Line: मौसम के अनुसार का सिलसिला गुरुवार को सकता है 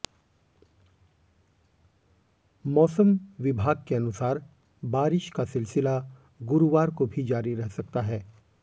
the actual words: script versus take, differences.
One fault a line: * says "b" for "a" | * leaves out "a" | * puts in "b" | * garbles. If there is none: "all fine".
* puts in "विभाग"
* puts in "बारिश"
* puts in "भी जारी रह"